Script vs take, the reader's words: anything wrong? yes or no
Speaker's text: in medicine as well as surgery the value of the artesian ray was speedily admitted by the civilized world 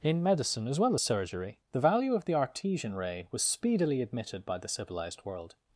no